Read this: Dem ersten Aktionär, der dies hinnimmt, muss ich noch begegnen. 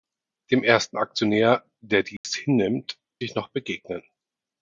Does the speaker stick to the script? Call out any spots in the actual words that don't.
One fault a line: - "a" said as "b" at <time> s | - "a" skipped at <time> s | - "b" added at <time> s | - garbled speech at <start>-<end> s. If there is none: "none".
- "muss" skipped at 3.0 s